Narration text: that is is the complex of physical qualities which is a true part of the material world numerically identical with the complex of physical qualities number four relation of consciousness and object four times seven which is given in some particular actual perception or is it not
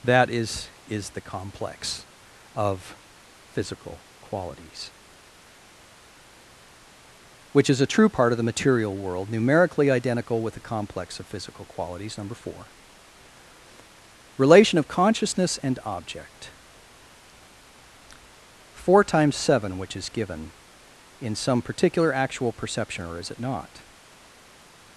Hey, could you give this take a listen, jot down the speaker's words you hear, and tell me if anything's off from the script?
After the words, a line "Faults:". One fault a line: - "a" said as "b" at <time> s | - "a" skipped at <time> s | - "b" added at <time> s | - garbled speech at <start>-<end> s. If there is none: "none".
that is is the complex of physical qualities which is a true part of the material world numerically identical with the complex of physical qualities number four relation of consciousness and object four times seven which is given in some particular actual perception or is it not
Faults:
none